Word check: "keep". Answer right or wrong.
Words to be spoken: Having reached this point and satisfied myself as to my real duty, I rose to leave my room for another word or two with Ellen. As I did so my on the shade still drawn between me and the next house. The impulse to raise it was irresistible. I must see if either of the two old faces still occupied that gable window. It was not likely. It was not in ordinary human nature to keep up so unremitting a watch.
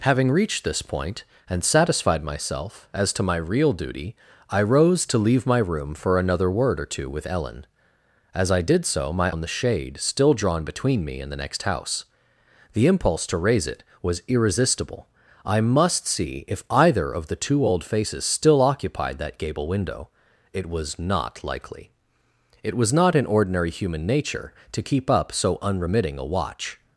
right